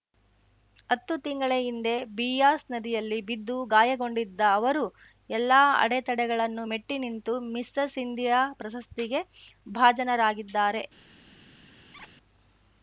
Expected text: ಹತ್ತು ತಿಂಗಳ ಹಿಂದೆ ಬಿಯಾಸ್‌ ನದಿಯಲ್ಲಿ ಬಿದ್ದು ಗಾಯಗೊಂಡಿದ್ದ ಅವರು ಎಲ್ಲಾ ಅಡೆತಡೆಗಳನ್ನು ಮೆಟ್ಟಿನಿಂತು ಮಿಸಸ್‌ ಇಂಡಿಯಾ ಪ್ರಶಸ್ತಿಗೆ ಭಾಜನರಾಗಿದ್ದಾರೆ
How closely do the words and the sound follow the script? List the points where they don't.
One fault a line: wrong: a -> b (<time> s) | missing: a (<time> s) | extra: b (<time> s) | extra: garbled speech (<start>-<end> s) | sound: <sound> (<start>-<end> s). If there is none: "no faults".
sound: squeak (11.9-12.1 s)